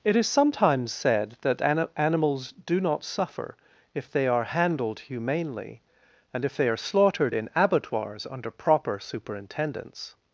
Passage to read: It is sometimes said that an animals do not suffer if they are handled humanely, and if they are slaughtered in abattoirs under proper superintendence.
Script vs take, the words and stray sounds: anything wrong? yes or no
no